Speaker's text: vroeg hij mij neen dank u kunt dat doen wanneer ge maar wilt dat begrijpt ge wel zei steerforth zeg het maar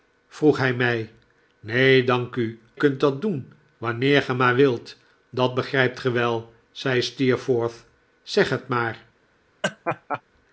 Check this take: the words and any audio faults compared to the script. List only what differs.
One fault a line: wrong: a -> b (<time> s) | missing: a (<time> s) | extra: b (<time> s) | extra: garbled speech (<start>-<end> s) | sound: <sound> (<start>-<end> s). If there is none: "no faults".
sound: laugh (9.6-10.2 s)